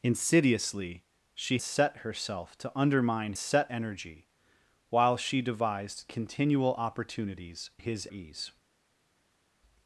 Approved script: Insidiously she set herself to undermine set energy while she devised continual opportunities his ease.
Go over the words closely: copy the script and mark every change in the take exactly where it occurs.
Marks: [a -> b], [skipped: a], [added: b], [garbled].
Insidiously she set herself to undermine set energy while she devised continual opportunities his ease.